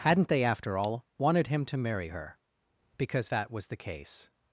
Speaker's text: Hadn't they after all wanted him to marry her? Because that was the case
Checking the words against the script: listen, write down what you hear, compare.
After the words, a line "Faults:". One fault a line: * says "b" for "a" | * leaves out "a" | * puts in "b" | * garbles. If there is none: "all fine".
Hadn't they after all wanted him to marry her? Because that was the case
Faults:
all fine